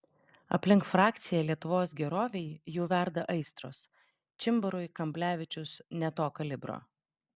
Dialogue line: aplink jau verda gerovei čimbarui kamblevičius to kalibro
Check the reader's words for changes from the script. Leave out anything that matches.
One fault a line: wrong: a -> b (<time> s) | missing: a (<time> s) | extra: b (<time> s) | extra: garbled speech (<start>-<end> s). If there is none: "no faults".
extra: frakciją lietuvos gerovei (0.9 s)
wrong: gerovei -> aistros (3.4 s)
extra: ne (6.0 s)